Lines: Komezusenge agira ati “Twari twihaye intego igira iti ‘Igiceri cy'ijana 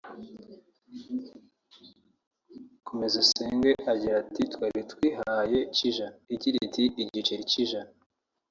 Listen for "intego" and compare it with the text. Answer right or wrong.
wrong